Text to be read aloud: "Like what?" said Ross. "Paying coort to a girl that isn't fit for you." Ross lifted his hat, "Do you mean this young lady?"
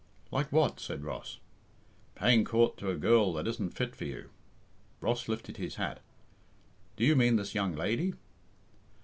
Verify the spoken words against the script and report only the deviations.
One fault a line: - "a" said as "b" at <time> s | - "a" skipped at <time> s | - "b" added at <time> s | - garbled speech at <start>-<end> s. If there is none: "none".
none